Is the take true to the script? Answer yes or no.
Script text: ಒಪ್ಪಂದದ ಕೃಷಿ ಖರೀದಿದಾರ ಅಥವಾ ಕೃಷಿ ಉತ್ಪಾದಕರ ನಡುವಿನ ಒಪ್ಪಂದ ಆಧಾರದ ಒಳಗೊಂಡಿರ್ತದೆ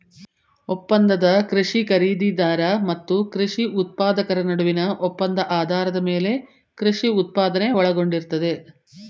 no